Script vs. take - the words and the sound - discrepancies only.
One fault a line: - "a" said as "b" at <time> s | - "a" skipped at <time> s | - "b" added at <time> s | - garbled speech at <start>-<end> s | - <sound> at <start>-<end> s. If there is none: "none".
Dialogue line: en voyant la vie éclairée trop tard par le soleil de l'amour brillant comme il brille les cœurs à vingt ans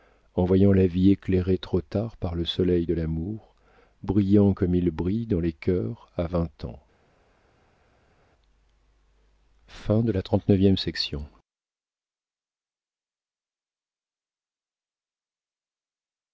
- "dans" added at 5.3 s